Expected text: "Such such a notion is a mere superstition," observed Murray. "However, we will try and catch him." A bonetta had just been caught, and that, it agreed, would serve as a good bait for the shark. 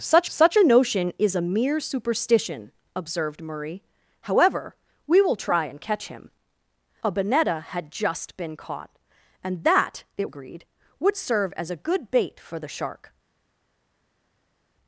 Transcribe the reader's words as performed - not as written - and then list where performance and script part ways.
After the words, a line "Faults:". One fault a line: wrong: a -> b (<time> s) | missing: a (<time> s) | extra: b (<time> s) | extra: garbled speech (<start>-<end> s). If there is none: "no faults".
"Such such a notion is a mere superstition," observed Murray. "However, we will try and catch him." A bonetta had just been caught, and that, it agreed, would serve as a good bait for the shark.
Faults:
no faults